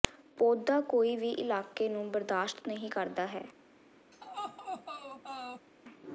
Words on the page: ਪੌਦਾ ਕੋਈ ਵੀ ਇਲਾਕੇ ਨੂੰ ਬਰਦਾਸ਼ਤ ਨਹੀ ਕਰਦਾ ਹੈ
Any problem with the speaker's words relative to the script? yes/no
no